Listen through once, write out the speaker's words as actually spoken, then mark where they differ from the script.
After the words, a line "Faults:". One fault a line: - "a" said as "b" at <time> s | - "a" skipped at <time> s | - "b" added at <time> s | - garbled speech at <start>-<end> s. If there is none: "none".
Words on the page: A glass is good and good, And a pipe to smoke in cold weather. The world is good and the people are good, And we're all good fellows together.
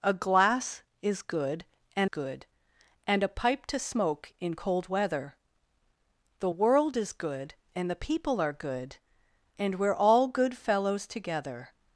A glass is good and good, And a pipe to smoke in cold weather. The world is good and the people are good, And we're all good fellows together.
Faults:
none